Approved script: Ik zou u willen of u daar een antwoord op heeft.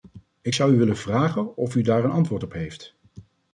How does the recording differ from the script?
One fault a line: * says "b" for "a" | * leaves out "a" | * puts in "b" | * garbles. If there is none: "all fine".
* puts in "vragen"